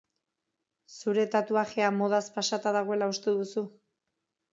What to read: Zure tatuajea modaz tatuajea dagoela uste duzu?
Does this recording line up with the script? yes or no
no